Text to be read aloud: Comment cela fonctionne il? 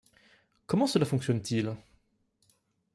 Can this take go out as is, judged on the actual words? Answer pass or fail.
fail